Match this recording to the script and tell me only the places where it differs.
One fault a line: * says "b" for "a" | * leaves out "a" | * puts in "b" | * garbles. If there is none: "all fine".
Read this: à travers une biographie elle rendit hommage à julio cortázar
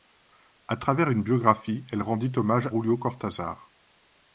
* leaves out "à"